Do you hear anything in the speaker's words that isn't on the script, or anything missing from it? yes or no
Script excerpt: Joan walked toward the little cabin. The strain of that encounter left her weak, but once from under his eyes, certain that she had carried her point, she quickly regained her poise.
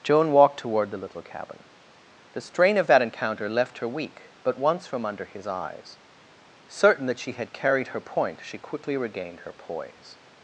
no